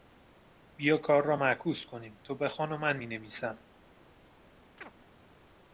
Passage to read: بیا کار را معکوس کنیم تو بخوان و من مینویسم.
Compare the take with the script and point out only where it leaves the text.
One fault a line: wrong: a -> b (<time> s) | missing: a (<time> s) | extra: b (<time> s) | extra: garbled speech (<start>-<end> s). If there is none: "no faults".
no faults